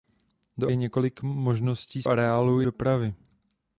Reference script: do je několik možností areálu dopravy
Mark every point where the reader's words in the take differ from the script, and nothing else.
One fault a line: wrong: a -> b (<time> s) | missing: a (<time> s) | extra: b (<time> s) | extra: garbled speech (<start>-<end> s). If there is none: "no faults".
no faults